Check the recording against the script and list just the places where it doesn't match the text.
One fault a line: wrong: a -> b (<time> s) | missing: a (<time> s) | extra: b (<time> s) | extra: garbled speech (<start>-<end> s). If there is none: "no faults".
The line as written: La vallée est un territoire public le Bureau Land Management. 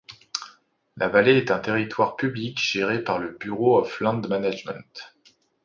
extra: géré par (2.6 s)
extra: of (3.8 s)